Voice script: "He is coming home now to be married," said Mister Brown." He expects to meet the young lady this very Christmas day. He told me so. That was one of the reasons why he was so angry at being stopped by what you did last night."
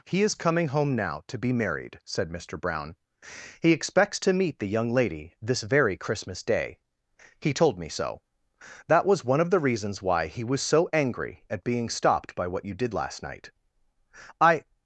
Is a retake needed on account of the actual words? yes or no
yes